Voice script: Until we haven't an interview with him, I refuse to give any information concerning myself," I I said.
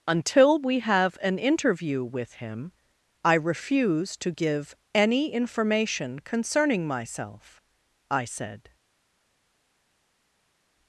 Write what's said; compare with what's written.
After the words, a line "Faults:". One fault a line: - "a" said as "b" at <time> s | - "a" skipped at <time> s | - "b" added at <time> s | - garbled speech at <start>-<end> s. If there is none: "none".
Until we have an interview with him, I refuse to give any information concerning myself," I said.
Faults:
- "haven't" said as "have" at 0.8 s
- "I" skipped at 8.2 s